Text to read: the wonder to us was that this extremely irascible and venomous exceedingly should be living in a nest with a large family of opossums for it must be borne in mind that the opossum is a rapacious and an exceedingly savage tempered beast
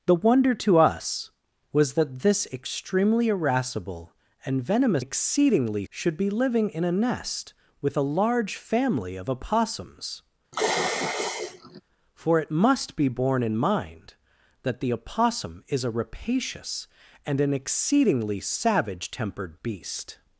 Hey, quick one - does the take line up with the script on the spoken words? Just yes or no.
yes